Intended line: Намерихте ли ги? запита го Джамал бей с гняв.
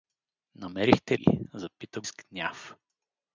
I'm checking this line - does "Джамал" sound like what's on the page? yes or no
no